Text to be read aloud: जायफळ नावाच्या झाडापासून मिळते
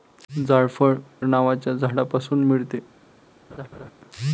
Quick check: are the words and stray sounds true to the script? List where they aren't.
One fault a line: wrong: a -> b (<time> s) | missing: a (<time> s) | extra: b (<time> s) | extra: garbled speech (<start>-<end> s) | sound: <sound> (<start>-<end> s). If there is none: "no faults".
sound: laugh (3.5-3.9 s)